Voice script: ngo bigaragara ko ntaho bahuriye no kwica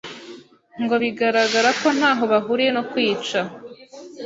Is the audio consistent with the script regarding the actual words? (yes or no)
yes